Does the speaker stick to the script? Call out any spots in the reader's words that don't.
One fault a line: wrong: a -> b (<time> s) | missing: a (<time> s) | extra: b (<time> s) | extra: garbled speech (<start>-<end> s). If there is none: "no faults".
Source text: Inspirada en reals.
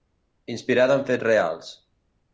extra: fets (1.1 s)